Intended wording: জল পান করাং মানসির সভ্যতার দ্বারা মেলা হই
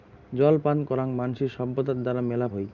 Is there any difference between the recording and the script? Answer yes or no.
no